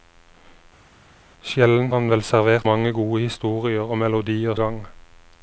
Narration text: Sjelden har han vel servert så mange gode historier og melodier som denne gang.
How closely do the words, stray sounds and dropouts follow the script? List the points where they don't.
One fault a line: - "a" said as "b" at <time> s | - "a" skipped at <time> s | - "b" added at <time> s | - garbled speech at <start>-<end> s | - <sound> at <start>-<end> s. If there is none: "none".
- "har" skipped at 1.9 s
- "så" skipped at 2.7 s
- "som denne" skipped at 4.5 s